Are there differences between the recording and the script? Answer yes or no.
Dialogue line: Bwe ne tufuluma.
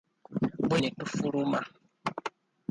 no